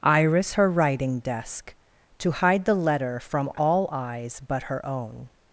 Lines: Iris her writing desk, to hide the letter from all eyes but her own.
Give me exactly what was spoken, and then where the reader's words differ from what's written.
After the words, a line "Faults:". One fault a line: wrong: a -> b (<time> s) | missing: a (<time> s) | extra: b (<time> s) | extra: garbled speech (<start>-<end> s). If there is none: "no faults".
Iris her writing desk, to hide the letter from all eyes but her own.
Faults:
no faults